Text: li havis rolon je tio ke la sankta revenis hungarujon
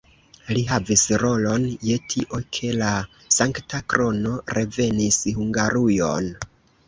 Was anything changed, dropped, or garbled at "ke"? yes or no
no